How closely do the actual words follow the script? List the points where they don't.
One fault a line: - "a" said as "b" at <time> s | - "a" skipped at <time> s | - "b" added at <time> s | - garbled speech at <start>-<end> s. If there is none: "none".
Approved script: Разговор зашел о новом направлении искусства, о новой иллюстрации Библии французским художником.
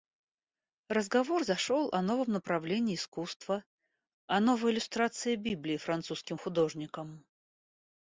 none